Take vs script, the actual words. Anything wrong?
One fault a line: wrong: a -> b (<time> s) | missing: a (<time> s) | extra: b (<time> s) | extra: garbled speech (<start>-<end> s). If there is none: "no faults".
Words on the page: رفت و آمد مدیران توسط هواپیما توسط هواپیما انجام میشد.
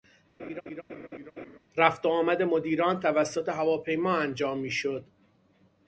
missing: توسط هواپیما (4.2 s)